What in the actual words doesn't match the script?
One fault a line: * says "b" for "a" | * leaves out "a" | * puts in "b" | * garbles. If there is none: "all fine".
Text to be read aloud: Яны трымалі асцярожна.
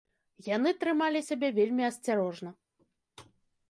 * puts in "сябе вельмі"